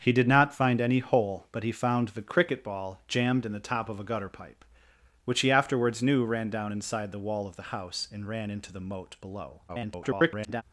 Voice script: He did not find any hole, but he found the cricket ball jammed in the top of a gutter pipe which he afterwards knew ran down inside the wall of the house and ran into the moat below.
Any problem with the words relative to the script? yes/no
yes